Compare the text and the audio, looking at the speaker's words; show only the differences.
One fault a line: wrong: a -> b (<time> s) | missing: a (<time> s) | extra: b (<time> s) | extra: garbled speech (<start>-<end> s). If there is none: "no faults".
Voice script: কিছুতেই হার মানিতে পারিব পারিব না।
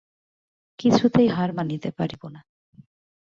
missing: পারিব (2.2 s)